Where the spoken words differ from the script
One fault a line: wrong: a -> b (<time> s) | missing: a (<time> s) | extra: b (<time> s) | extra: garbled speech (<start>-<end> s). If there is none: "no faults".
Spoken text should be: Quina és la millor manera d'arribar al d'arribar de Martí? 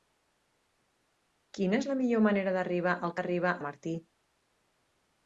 no faults